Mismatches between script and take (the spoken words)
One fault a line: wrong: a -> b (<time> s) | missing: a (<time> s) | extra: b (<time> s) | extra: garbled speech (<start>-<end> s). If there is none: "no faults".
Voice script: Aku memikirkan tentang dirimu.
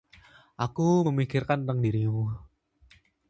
no faults